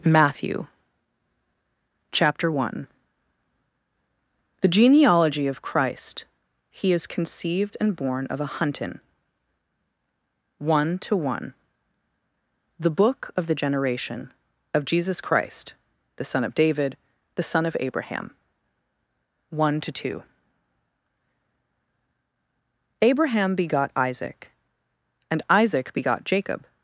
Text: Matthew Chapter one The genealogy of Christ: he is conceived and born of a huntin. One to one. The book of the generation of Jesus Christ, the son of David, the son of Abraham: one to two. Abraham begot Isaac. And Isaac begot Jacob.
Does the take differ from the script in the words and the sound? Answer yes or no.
no